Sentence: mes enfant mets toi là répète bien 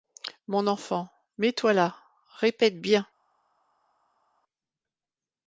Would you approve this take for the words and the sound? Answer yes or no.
no